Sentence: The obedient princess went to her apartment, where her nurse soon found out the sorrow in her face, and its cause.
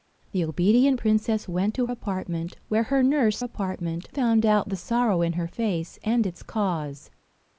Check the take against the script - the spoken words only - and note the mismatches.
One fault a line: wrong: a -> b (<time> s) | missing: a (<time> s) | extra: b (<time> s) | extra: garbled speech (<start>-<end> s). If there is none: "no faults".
missing: her (1.9 s)
wrong: soon -> apartment (3.4 s)